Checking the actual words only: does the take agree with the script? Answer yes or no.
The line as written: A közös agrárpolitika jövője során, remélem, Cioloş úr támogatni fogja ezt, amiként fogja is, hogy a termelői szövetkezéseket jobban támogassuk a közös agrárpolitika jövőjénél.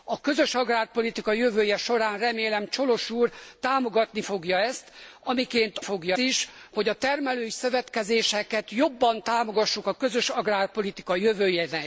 yes